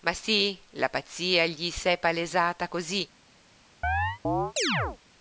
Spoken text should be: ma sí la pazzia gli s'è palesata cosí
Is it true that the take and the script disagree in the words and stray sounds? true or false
true